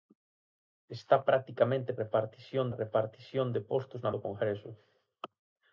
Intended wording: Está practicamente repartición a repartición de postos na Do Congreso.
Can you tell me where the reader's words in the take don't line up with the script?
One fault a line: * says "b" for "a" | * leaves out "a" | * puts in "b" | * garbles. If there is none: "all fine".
all fine